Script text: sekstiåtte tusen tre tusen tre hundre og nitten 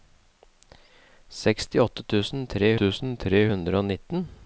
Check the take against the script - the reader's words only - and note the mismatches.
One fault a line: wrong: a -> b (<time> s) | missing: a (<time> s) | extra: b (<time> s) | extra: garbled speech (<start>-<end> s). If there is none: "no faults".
no faults